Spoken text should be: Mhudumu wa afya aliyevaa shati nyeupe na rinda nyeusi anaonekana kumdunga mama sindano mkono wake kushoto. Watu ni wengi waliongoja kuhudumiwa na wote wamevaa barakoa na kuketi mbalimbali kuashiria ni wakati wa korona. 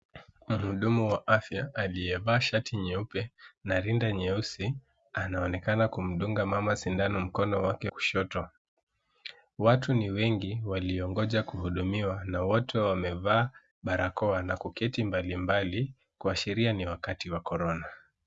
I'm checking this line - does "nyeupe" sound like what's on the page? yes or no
yes